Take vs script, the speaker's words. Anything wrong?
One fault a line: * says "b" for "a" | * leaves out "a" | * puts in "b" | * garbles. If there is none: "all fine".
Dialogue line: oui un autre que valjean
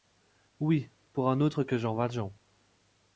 * puts in "pour"
* puts in "jean"